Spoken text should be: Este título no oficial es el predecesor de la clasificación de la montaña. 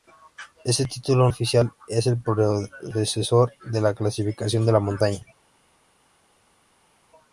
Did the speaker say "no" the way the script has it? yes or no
no